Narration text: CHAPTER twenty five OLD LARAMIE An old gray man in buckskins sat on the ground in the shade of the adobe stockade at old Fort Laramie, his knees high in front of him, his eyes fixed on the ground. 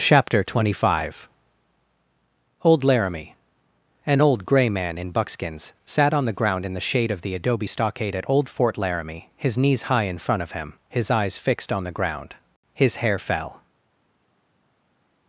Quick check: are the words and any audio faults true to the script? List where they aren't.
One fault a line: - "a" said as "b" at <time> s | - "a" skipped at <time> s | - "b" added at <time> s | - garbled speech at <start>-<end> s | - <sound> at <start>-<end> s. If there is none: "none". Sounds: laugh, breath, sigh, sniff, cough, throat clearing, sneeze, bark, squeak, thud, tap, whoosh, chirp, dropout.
- "His hair fell" added at 12.7 s